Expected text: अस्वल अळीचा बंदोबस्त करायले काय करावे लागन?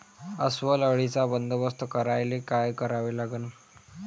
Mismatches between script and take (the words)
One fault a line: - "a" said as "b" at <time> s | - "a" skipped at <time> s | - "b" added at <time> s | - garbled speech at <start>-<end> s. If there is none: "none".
none